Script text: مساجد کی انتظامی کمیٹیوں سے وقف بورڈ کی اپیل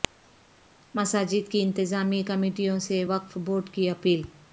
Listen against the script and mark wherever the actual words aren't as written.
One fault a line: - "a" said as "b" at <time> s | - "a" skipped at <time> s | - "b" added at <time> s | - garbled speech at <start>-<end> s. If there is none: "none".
none